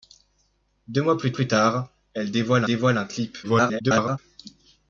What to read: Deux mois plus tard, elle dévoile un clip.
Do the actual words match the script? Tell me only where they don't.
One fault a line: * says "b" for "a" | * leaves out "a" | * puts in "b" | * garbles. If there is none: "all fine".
* puts in "plus"
* puts in "dévoile"
* garbles